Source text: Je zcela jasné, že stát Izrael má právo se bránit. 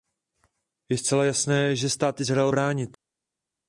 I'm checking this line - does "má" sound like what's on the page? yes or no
no